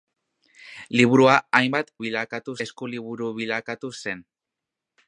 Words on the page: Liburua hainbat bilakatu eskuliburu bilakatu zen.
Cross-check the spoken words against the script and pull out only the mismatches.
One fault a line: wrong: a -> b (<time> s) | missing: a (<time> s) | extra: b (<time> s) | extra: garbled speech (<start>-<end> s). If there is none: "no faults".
no faults